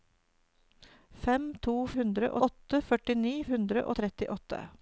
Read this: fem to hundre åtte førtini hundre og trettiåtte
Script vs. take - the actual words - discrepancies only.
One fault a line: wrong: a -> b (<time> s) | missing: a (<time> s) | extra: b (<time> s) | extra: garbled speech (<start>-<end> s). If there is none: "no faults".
no faults